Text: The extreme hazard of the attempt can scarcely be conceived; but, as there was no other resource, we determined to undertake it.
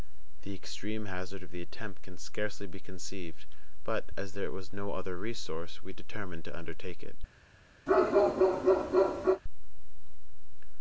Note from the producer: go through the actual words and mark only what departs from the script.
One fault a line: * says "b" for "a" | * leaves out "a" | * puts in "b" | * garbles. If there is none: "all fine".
all fine